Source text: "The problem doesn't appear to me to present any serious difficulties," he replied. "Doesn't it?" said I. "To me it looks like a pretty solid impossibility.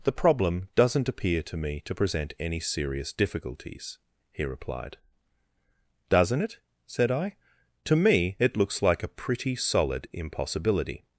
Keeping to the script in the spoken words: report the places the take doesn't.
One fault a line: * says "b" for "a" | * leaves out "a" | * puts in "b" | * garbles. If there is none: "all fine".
all fine